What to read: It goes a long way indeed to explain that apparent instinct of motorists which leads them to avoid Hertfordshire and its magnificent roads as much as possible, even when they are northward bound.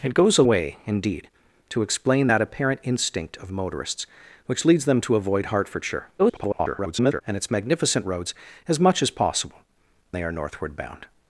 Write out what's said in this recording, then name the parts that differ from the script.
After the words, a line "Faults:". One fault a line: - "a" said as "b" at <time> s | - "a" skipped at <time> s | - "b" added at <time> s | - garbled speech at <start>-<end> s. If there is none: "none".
It goes a way indeed to explain that apparent instinct of motorists which leads them to avoid Hertfordshire [garbled] and its magnificent roads as much as possible, they are northward bound.
Faults:
- "long" skipped at 0.4 s
- garbled speech at 6.2-7.2 s
- "even when" skipped at 9.6 s